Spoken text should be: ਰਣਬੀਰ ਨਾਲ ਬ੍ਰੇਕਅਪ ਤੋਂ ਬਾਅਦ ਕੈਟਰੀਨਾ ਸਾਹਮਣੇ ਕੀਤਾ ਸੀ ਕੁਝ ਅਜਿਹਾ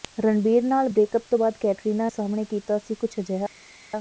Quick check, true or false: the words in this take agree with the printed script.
true